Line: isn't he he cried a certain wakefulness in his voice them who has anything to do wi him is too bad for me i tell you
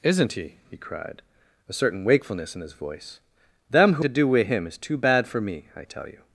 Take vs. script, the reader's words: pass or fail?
fail